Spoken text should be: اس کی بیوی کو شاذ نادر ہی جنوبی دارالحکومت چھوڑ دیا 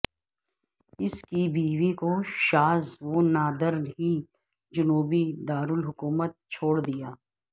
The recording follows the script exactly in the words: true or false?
false